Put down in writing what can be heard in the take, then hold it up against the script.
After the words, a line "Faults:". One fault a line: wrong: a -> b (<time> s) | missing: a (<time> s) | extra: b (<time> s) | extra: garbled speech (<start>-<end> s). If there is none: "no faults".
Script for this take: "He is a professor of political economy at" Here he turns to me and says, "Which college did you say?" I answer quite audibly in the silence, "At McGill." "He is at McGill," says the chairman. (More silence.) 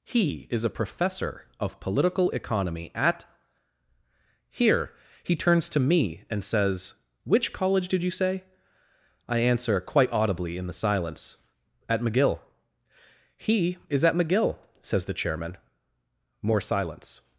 "He is a professor of political economy at" Here he turns to me and says, "Which college did you say?" I answer quite audibly in the silence, "At McGill." "He is at McGill," says the chairman. (More silence.)
Faults:
no faults